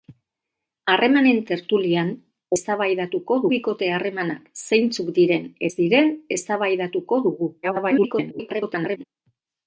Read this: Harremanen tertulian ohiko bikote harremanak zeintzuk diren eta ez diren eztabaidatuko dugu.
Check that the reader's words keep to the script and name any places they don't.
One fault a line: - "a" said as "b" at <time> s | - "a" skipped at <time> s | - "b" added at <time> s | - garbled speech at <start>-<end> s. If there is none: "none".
- "ohiko" said as "eztabaidatuko" at 2.6 s
- "eta" skipped at 5.5 s
- garbled speech at 7.6-9.0 s